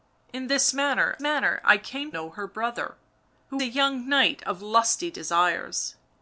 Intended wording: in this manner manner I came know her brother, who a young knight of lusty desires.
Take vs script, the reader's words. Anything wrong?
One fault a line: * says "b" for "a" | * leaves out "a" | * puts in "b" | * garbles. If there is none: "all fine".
all fine